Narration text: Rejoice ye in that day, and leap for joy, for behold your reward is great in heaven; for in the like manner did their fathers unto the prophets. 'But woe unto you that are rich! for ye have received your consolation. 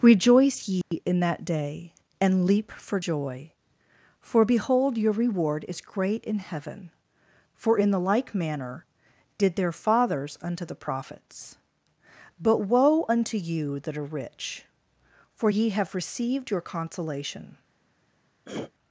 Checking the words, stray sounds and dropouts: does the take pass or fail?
fail